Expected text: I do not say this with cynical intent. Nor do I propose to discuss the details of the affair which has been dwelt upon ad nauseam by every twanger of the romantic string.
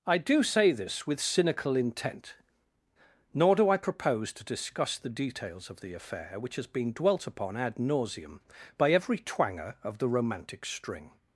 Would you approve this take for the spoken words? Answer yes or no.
no